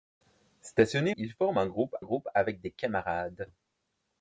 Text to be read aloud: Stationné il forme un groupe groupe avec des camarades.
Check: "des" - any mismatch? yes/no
no